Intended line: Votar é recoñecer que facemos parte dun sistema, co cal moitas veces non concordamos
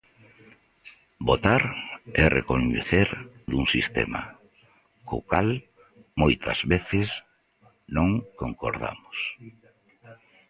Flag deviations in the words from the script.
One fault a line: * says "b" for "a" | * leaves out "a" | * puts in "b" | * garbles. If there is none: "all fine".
* leaves out "que facemos parte"